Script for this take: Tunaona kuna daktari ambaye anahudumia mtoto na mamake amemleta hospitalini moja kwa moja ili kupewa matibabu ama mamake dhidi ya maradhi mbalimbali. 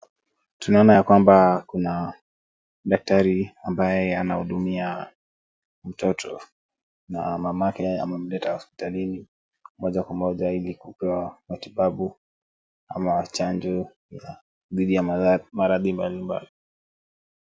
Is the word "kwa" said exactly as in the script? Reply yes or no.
yes